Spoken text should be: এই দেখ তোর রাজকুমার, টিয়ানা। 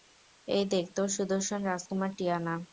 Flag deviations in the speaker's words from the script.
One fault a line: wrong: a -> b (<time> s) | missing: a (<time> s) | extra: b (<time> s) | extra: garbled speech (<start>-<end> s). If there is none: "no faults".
extra: সুদর্শন (1.1 s)